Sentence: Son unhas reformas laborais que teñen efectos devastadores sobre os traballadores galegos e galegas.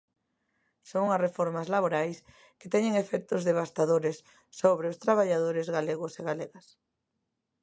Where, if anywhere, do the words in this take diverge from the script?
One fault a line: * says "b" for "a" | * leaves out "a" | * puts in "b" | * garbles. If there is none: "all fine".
all fine